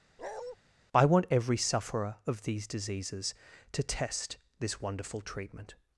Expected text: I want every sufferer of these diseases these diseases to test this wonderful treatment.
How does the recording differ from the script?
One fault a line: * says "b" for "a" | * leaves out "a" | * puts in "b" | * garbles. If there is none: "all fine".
* leaves out "these diseases"